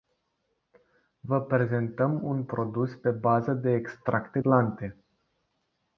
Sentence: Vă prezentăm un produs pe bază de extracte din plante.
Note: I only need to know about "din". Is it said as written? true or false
false